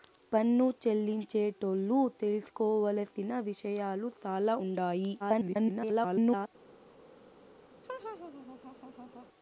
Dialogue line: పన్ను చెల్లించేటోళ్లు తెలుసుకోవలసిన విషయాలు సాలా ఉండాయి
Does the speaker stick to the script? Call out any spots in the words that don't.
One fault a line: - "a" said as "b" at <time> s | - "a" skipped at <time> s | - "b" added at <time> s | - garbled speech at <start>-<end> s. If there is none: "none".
- garbled speech at 5.2-6.5 s